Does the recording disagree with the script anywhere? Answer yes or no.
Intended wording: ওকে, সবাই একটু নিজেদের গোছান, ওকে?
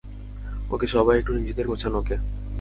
no